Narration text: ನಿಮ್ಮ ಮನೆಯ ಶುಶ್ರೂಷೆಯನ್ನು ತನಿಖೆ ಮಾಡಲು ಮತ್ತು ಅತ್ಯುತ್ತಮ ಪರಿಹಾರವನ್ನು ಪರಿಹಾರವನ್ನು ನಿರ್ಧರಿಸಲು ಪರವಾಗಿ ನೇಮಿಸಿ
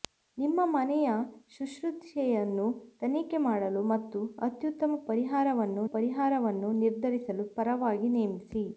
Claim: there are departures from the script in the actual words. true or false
false